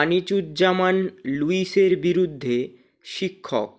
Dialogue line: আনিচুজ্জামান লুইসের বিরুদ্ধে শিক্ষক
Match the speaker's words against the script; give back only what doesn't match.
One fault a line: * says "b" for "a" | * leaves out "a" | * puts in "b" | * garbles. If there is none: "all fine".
all fine